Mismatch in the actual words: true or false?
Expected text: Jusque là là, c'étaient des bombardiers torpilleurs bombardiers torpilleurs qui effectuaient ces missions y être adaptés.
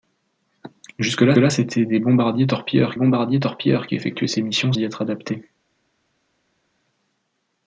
false